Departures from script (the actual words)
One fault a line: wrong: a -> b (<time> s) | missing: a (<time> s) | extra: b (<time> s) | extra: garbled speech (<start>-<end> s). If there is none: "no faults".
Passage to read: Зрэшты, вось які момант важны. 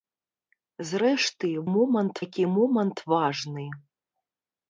wrong: вось -> момант (1.7 s)